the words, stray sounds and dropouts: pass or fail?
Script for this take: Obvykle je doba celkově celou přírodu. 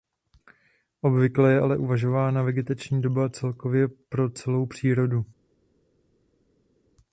fail